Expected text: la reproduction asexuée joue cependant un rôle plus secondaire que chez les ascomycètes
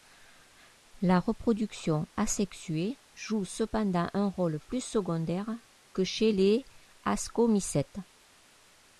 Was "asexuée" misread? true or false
false